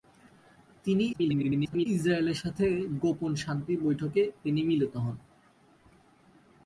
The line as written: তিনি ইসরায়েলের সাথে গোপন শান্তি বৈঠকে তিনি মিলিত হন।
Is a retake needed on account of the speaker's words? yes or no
yes